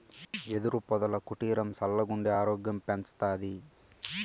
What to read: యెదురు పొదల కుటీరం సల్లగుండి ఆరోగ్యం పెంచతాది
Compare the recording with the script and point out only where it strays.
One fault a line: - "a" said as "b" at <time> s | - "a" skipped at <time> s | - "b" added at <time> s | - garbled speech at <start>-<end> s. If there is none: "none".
none